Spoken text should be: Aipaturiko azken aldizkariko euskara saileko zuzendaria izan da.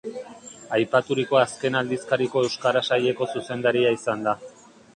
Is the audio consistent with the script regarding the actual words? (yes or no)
yes